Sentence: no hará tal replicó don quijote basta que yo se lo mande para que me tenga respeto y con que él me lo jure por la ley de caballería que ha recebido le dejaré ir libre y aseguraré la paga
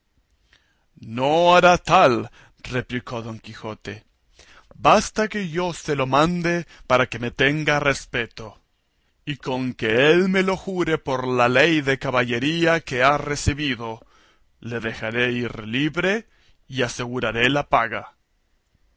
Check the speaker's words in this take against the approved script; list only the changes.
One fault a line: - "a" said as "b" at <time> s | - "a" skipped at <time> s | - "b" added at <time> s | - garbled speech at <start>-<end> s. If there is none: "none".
none